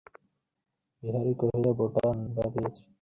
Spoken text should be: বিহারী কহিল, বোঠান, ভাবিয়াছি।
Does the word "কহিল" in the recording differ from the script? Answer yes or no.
no